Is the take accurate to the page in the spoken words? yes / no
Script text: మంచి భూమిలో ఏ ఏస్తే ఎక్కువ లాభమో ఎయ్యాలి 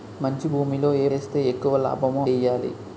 yes